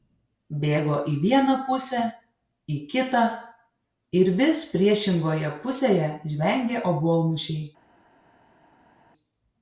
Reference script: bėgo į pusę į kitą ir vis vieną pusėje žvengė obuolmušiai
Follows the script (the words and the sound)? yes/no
no